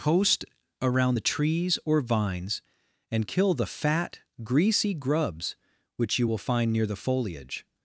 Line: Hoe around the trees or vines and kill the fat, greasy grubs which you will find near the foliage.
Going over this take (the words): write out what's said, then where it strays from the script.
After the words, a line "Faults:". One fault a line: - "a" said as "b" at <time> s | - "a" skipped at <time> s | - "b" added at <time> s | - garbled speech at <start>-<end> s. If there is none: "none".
Post around the trees or vines and kill the fat, greasy grubs which you will find near the foliage.
Faults:
- "Hoe" said as "Post" at 0.0 s